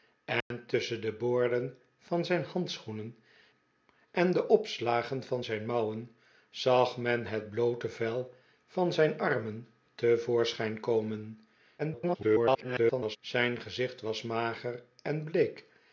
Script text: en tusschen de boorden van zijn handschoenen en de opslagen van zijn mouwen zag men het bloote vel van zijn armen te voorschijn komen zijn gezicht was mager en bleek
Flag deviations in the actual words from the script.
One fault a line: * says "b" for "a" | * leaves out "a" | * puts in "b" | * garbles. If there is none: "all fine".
* garbles